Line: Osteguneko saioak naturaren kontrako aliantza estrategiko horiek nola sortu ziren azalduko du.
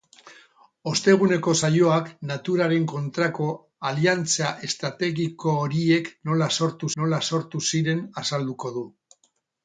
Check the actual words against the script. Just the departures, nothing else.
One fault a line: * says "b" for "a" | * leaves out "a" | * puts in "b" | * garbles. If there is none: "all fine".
* puts in "nola sortu"